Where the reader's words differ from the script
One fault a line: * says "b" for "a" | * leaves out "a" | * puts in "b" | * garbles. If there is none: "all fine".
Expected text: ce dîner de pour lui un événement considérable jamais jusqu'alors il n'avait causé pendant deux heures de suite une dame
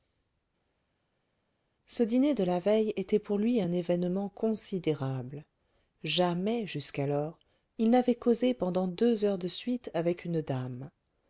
* puts in "la veille était"
* puts in "avec"